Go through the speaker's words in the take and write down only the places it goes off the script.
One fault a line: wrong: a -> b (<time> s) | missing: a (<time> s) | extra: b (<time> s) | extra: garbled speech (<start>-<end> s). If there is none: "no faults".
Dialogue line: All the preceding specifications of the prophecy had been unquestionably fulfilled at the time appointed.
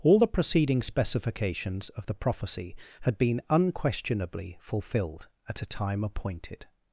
wrong: the -> a (5.6 s)